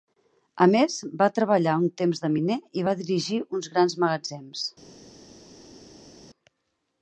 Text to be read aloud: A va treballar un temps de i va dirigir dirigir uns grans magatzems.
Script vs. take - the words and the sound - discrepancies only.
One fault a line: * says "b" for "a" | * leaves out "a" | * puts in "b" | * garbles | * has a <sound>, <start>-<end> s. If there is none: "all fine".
* puts in "més"
* puts in "miner"
* leaves out "dirigir"